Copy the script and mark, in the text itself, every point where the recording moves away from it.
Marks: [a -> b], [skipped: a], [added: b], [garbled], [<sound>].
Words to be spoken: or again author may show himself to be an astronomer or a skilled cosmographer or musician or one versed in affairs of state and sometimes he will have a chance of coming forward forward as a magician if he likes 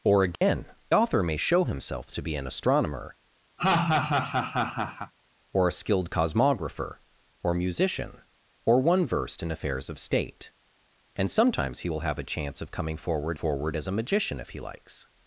or again [dropout] author may show himself to be an astronomer [laugh] or a skilled cosmographer or musician or one versed in affairs of state and sometimes he will have a chance of coming forward forward as a magician if he likes